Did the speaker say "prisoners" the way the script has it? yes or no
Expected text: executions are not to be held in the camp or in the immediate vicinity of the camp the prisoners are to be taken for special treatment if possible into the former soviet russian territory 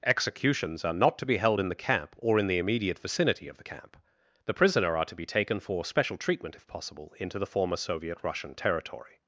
no